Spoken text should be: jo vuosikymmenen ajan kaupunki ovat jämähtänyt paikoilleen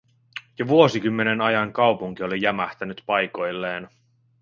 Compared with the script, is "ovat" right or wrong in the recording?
wrong